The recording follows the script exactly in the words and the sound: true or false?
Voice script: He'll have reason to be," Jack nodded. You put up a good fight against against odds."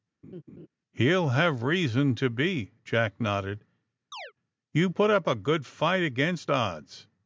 false